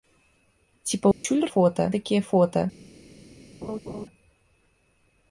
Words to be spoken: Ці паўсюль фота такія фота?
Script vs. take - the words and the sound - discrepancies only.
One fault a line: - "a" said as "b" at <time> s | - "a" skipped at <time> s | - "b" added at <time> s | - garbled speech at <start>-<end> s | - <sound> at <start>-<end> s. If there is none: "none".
- dropout at 1.1-1.2 s
- laugh at 3.6-4.1 s